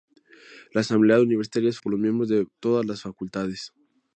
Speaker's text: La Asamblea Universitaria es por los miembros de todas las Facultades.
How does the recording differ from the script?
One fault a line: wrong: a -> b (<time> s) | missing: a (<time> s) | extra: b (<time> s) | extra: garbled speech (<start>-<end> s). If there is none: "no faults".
no faults